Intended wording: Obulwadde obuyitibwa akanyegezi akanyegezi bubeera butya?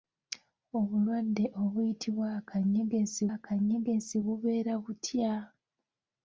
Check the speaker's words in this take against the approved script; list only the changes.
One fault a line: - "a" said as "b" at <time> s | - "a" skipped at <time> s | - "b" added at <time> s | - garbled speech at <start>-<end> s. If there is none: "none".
none